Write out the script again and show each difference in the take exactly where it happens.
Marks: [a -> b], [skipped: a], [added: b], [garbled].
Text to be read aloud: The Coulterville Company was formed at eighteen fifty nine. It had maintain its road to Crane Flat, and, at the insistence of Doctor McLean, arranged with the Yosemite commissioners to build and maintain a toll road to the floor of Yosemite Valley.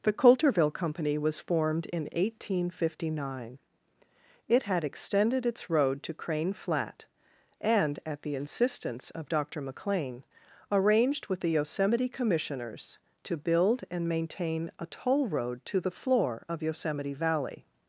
The Coulterville Company was formed [at -> in] eighteen fifty nine. It had [maintain -> extended] its road to Crane Flat, and, at the insistence of Doctor McLean, arranged with the Yosemite commissioners to build and maintain a toll road to the floor of Yosemite Valley.